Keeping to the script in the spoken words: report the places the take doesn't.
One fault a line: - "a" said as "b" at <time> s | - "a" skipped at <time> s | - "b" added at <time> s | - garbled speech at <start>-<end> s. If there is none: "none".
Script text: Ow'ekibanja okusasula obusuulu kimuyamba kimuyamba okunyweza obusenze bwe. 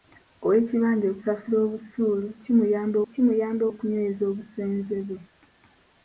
none